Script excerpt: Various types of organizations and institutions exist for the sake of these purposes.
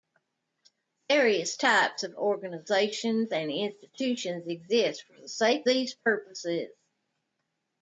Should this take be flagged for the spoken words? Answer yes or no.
yes